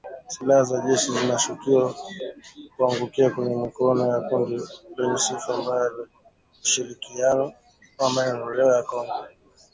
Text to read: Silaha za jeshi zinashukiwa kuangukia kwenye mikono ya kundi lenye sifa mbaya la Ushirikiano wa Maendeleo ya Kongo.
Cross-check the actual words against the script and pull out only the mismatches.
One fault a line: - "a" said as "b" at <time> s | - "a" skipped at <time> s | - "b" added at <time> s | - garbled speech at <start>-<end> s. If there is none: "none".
none